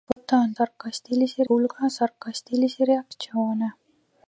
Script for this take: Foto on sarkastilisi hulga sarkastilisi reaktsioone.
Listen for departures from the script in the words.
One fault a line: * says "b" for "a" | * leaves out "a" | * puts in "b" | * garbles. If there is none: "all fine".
all fine